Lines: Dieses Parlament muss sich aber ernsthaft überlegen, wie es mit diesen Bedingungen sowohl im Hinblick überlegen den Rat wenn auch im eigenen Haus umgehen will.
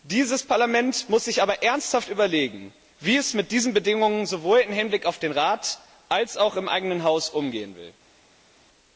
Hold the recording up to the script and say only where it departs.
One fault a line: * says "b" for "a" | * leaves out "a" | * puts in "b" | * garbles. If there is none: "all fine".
* says "auf" for "überlegen"
* says "als" for "wenn"